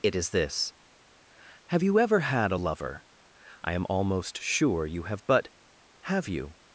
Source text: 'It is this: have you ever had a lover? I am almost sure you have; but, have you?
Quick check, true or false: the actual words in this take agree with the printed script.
true